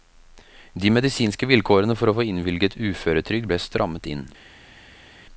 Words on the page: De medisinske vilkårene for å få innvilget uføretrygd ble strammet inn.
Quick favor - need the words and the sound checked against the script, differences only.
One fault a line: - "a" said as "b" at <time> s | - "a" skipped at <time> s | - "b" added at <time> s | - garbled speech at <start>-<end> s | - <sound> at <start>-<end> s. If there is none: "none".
none